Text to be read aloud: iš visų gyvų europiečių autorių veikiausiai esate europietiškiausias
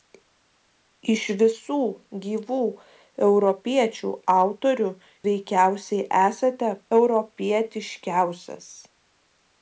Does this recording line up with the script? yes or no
yes